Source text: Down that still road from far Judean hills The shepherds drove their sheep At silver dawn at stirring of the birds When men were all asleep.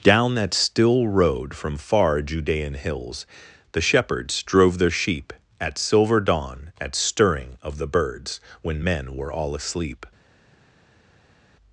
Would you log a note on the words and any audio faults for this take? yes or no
no